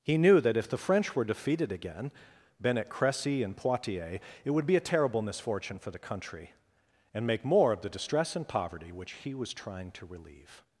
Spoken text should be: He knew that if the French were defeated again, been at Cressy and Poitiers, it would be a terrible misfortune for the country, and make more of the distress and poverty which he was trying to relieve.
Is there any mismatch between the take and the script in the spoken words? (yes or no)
no